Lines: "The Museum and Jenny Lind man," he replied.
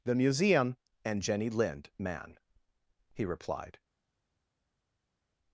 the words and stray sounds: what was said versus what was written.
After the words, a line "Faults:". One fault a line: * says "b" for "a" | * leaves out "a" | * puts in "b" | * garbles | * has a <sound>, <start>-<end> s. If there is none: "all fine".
"The Museum and Jenny Lind man," he replied.
Faults:
all fine